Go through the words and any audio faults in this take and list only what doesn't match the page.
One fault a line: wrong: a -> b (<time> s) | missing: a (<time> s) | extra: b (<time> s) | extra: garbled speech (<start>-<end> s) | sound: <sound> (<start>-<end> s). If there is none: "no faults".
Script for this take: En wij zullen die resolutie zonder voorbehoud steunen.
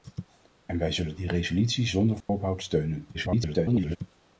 sound: dropout (2.2-2.3 s)
extra: garbled speech (3.1-4.0 s)